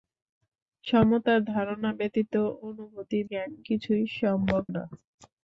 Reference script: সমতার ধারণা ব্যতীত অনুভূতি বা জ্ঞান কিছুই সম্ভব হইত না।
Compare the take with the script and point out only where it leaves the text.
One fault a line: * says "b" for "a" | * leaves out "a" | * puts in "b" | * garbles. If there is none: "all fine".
* leaves out "বা"
* leaves out "হইত"